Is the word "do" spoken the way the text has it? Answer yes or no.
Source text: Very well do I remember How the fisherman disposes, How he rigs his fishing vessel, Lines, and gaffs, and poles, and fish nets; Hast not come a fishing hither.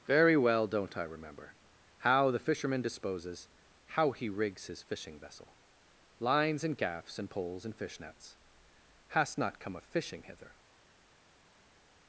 no